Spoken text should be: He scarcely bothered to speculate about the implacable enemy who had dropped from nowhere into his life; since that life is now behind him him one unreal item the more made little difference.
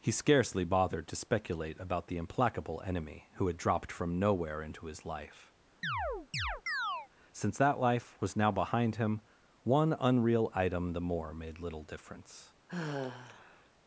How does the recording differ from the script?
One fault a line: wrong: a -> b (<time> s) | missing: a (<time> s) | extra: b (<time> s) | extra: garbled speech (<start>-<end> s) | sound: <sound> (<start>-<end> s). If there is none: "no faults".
sound: chirp (5.8-7.1 s)
wrong: is -> was (8.2 s)
missing: him (9.2 s)
sound: sigh (12.7-13.7 s)